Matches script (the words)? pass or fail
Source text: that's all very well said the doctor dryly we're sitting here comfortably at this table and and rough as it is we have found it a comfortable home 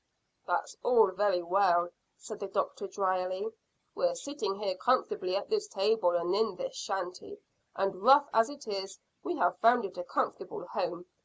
fail